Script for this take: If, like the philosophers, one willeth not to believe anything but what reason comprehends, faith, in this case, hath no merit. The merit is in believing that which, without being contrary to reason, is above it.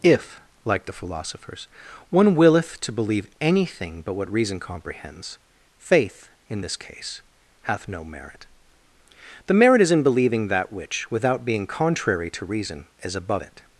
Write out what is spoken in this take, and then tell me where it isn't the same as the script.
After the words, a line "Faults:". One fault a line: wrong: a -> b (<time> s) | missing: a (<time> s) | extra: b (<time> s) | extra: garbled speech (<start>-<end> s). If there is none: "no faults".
If, like the philosophers, one willeth to believe anything but what reason comprehends, faith, in this case, hath no merit. The merit is in believing that which, without being contrary to reason, is above it.
Faults:
missing: not (2.8 s)